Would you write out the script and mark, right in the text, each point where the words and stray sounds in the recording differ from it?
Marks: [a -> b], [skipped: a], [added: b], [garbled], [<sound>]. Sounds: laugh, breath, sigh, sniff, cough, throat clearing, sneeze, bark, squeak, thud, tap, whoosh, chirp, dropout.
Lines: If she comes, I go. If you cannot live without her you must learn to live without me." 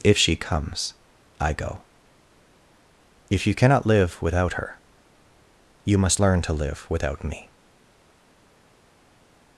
If she comes, I go. If you cannot live without her you must learn to live without me."